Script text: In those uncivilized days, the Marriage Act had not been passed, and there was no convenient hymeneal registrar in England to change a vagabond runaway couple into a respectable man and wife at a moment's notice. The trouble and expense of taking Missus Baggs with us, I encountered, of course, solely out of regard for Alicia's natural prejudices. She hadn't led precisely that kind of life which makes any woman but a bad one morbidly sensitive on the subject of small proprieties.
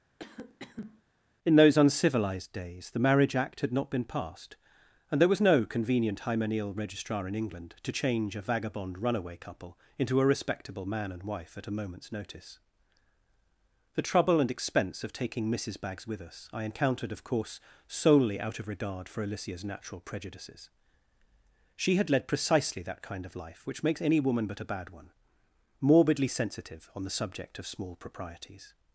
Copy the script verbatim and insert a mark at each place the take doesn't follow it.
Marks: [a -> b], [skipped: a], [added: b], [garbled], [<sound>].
[cough] In those uncivilized days, the Marriage Act had not been passed, and there was no convenient hymeneal registrar in England to change a vagabond runaway couple into a respectable man and wife at a moment's notice. The trouble and expense of taking Missus Baggs with us, I encountered, of course, solely out of regard for Alicia's natural prejudices. She [hadn't -> had] led precisely that kind of life which makes any woman but a bad one morbidly sensitive on the subject of small proprieties.